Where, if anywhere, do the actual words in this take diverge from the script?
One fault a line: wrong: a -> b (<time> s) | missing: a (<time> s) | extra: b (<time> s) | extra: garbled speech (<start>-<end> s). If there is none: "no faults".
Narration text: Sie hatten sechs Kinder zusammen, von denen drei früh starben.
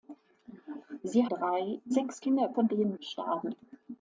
wrong: hatten -> drei (1.3 s)
missing: zusammen (2.5 s)
missing: drei früh (3.0 s)